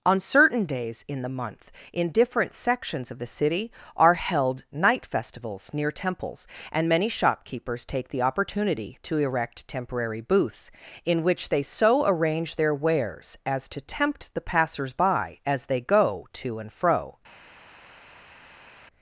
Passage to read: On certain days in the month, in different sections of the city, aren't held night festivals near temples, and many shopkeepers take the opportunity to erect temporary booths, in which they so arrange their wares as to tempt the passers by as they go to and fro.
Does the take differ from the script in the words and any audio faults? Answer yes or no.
yes